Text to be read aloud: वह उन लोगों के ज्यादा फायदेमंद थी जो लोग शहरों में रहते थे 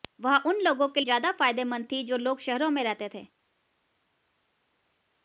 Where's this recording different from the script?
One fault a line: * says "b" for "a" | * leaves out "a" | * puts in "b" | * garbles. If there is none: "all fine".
all fine